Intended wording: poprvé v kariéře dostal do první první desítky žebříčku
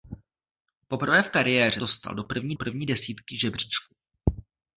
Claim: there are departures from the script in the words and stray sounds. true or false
false